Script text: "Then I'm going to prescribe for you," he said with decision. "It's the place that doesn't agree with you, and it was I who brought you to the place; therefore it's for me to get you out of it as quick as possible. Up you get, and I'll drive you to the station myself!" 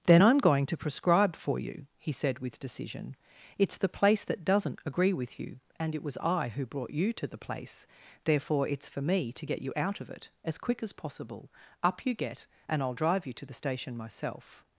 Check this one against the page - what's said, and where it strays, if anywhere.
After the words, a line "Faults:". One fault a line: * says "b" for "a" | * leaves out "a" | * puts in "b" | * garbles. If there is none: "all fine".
"Then I'm going to prescribe for you," he said with decision. "It's the place that doesn't agree with you, and it was I who brought you to the place; therefore it's for me to get you out of it as quick as possible. Up you get, and I'll drive you to the station myself!"
Faults:
all fine